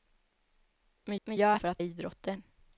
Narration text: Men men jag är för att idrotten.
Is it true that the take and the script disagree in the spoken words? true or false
false